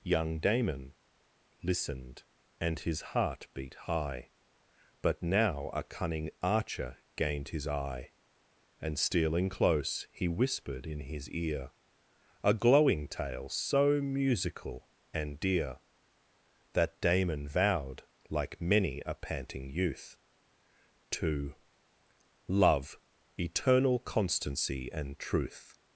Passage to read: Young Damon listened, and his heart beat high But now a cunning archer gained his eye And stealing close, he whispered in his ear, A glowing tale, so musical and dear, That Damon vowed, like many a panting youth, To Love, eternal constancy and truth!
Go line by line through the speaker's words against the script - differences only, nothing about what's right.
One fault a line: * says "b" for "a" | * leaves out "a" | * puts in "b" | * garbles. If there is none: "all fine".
all fine